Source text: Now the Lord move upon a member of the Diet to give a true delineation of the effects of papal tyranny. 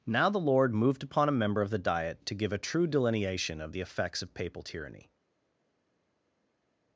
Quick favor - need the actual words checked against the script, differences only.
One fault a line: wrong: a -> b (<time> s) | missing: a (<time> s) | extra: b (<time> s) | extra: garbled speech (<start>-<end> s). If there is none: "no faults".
wrong: move -> moved (0.7 s)